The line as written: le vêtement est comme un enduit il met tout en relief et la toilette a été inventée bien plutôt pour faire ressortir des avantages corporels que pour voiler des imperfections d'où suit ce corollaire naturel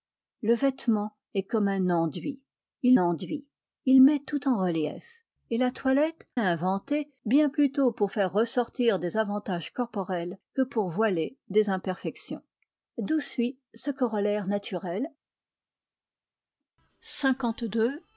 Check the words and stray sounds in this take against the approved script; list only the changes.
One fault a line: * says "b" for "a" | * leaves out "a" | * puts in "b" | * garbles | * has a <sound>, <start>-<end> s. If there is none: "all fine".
* puts in "enduit il"
* leaves out "a été"